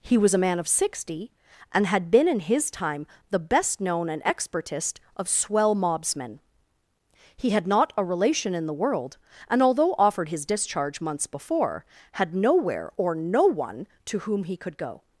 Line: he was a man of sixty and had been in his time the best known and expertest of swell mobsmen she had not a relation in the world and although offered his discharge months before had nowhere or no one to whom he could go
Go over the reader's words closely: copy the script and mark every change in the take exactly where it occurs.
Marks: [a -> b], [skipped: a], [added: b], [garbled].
he was a man of sixty and had been in his time the best known and expertest of swell mobsmen [she -> he] had not a relation in the world and although offered his discharge months before had nowhere or no one to whom he could go